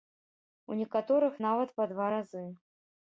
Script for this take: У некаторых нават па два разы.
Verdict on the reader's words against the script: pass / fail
pass